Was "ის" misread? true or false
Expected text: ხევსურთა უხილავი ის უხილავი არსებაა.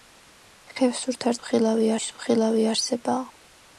false